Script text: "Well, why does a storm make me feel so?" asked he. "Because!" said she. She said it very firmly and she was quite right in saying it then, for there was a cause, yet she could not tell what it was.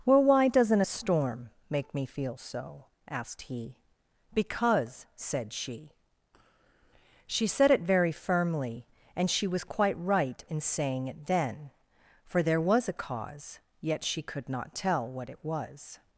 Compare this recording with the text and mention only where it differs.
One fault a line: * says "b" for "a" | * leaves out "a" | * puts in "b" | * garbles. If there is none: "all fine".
* says "doesn't" for "does"